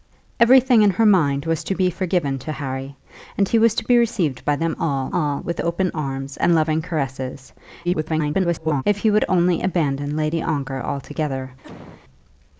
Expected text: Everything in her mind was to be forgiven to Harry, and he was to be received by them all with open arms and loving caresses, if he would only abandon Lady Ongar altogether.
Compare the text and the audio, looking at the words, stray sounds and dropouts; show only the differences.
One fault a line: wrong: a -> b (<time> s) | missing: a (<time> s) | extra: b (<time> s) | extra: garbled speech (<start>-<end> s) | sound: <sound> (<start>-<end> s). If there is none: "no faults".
extra: all (5.1 s)
extra: garbled speech (7.8-8.8 s)
sound: cough (11.6-12.0 s)